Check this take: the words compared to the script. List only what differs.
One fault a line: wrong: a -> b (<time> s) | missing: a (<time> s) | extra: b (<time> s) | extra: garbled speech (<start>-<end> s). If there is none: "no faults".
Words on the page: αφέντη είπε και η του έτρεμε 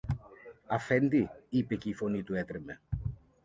extra: φωνή (1.9 s)